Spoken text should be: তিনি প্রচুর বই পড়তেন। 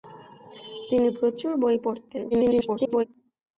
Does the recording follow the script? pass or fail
fail